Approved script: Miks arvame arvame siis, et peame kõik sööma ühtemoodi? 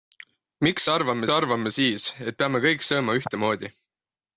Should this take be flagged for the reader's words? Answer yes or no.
no